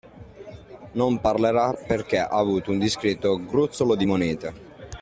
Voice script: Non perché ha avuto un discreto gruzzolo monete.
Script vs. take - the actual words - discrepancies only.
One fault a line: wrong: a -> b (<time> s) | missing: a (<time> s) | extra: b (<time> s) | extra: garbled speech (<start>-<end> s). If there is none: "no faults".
extra: parlerà (1.2 s)
extra: di (4.0 s)